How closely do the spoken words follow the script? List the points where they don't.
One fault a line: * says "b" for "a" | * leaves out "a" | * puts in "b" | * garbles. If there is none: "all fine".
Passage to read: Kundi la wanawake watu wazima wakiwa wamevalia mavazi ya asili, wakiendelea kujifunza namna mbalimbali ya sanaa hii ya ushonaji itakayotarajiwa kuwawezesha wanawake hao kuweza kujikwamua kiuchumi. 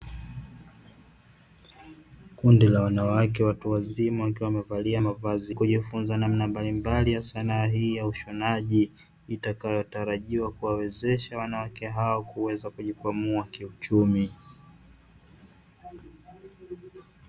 * leaves out "ya asili wakiendelea"